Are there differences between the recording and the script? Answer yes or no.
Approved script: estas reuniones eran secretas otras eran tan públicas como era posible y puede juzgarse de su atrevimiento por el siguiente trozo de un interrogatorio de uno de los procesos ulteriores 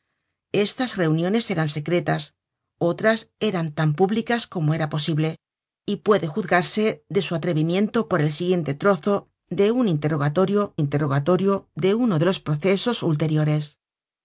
yes